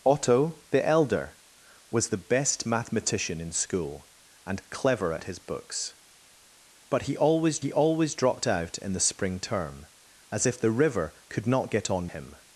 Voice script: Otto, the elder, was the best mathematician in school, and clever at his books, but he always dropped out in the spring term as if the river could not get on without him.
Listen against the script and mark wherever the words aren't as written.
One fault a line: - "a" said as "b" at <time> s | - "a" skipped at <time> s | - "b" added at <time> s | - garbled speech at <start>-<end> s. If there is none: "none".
- "he always" added at 7.6 s
- "without" skipped at 12.1 s